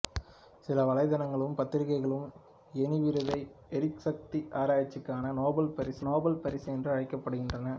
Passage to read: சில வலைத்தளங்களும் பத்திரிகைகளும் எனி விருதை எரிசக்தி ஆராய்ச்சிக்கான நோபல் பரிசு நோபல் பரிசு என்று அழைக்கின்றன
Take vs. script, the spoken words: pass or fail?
pass